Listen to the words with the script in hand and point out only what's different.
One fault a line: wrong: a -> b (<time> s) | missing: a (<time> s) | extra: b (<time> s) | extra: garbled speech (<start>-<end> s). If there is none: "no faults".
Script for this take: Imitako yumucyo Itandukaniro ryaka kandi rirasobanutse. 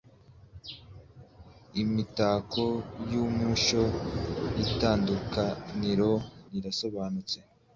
missing: ryaka kandi (6.1 s)